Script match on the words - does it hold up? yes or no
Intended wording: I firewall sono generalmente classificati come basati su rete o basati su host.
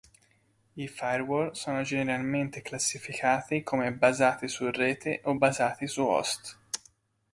yes